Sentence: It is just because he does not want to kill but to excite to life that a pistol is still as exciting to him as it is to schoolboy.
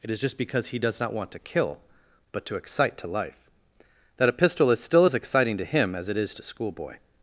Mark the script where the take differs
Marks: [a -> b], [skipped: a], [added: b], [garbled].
It is just because he does not want to kill but to excite to life that a pistol is still as exciting to him as it is to schoolboy.